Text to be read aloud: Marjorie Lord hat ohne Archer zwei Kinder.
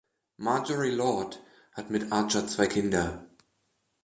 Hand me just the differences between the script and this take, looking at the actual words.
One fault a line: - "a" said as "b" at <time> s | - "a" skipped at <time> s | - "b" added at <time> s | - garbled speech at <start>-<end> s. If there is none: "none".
- "ohne" said as "mit" at 1.9 s